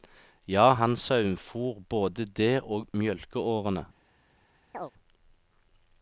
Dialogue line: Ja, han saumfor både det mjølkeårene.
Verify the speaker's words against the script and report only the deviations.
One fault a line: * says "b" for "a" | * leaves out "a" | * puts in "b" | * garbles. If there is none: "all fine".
* puts in "og"